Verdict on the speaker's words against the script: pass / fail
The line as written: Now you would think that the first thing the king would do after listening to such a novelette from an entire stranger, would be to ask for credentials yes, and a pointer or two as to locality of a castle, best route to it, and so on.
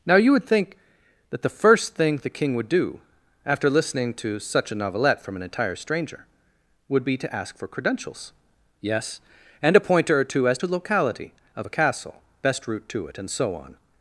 pass